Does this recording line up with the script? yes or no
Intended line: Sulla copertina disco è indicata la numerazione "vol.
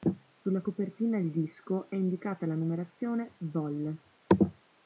no